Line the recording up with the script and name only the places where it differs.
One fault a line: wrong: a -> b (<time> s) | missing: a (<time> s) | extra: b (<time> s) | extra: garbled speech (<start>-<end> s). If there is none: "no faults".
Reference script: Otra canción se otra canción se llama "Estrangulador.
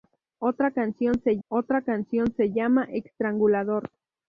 no faults